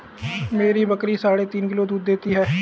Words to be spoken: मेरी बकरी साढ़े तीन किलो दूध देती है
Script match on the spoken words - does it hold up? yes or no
yes